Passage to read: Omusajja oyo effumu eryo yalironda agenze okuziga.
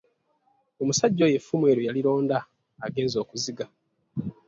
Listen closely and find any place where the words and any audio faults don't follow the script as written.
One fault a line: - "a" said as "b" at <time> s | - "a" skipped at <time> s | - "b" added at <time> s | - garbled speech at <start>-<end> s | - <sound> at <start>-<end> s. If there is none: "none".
none